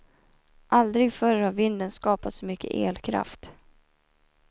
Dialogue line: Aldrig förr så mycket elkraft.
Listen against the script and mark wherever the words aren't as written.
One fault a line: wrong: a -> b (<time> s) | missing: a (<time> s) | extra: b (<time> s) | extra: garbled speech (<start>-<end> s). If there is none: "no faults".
extra: har vinden skapat (1.4 s)